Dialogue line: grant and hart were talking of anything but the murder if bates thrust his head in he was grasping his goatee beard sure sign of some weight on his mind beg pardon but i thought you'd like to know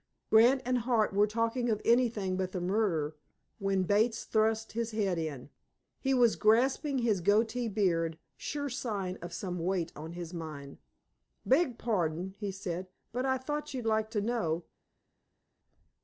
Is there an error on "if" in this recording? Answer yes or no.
yes